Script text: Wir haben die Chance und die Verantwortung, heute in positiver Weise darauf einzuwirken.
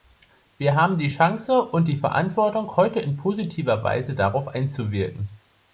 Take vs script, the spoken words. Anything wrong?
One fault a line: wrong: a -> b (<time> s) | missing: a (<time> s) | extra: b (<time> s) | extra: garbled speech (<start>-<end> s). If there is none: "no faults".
no faults